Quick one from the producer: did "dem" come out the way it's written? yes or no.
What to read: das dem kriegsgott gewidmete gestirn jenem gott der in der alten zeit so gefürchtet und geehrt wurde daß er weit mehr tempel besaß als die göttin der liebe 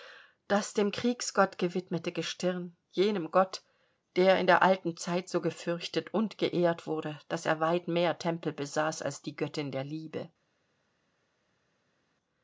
yes